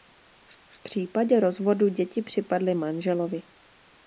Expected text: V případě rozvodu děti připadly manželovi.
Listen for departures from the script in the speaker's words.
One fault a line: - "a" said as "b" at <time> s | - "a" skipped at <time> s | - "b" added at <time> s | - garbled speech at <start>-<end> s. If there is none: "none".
- "v" added at 0.7 s